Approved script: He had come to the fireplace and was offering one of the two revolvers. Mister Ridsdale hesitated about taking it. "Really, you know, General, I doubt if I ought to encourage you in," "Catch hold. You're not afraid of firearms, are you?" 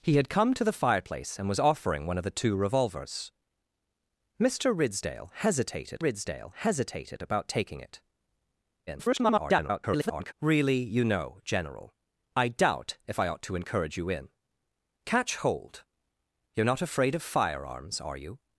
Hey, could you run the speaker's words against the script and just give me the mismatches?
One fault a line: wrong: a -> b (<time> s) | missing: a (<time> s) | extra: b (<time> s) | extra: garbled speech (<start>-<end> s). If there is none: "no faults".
extra: Ridsdale hesitated (6.0 s)
extra: garbled speech (8.9-10.3 s)